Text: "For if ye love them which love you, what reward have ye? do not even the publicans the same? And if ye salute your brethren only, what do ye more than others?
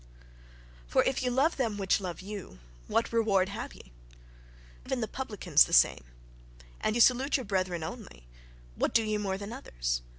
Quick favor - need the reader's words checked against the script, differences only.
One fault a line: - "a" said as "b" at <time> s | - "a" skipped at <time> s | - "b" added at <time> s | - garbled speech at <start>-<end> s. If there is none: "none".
- "do not" skipped at 3.9 s
- "if" skipped at 6.9 s